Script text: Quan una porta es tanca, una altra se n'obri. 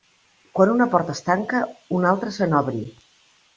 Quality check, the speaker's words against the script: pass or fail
pass